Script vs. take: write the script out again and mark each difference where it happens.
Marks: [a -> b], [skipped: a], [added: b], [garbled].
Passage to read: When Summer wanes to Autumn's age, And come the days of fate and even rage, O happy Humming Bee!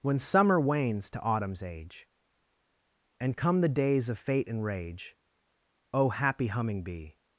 When Summer wanes to Autumn's age, And come the days of fate and [skipped: even] rage, O happy Humming Bee!